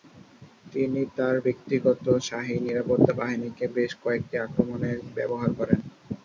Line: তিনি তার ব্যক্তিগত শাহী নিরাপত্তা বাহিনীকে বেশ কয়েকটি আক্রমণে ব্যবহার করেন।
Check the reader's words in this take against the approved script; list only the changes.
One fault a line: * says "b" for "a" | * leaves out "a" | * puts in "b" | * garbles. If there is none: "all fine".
all fine